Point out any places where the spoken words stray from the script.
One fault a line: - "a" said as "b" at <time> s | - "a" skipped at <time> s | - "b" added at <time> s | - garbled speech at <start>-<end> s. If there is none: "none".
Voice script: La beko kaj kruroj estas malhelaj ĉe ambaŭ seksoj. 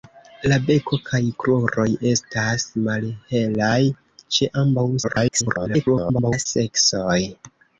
- garbled speech at 5.0-6.5 s